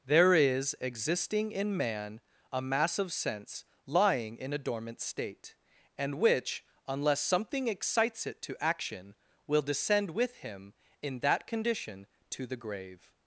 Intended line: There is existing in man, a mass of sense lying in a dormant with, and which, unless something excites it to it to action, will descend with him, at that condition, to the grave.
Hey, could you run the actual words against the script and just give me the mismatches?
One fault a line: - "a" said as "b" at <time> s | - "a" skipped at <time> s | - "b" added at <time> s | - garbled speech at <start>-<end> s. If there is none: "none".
- "with" said as "state" at 5.0 s
- "it to" skipped at 8.6 s
- "at" said as "in" at 11.0 s